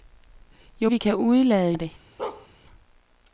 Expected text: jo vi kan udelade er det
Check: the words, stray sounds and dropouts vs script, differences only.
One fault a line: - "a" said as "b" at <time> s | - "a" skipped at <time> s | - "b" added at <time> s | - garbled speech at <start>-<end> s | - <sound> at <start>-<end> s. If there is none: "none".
- bark at 2.2-2.5 s